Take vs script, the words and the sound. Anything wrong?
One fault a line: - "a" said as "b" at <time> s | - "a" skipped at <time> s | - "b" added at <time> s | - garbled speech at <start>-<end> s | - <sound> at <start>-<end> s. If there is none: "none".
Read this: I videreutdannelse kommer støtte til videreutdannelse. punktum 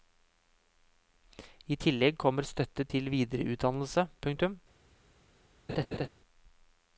- "videreutdannelse" said as "tillegg" at 1.8 s
- laugh at 5.7-6.1 s